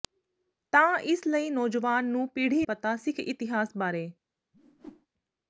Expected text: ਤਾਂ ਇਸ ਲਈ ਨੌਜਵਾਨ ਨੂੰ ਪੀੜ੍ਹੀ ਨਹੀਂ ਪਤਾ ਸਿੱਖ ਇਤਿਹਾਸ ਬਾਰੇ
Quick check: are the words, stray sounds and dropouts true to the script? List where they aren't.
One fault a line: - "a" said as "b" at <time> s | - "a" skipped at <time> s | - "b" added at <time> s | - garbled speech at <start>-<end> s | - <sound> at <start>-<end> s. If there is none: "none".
- "ਨਹੀਂ" skipped at 2.6 s
- whoosh at 4.5-5.1 s